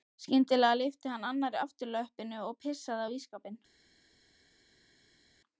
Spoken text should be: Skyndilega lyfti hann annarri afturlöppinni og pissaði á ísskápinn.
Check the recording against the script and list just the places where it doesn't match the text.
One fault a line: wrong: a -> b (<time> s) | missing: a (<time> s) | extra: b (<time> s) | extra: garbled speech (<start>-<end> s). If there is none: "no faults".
no faults